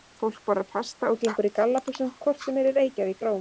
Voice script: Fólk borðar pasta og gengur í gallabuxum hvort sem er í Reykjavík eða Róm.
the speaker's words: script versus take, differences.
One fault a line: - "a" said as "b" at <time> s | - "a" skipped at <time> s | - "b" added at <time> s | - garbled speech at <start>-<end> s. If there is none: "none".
- "eða" skipped at 3.2 s